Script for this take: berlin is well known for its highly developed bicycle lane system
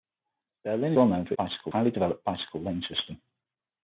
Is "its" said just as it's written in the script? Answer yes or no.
no